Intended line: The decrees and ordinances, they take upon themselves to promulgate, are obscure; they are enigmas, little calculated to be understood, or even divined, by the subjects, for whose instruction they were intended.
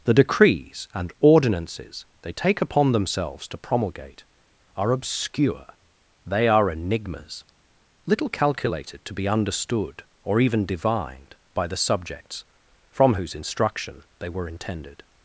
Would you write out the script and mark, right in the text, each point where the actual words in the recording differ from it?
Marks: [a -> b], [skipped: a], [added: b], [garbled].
The decrees and ordinances, they take upon themselves to promulgate, are obscure; they are enigmas, little calculated to be understood, or even divined, by the subjects, [for -> from] whose instruction they were intended.